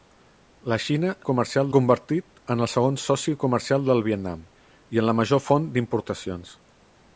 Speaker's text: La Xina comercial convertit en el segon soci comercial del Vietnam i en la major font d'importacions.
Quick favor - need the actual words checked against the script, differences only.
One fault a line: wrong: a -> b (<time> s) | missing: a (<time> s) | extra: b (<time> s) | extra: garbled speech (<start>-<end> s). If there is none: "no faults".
no faults